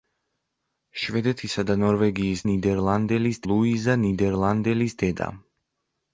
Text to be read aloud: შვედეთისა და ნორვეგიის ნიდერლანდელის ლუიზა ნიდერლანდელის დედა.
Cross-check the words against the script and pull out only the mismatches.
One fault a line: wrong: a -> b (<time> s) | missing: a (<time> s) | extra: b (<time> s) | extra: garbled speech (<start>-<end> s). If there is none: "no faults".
no faults